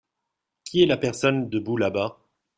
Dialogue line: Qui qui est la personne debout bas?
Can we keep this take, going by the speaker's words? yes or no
no